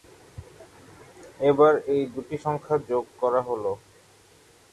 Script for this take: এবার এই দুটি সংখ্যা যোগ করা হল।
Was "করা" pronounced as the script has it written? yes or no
yes